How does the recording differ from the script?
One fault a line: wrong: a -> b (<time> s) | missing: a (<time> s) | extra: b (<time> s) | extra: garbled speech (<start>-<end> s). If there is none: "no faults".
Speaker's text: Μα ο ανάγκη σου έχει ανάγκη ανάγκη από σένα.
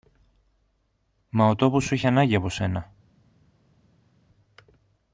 wrong: ανάγκη -> τόπος (1.6 s)
missing: ανάγκη (2.4 s)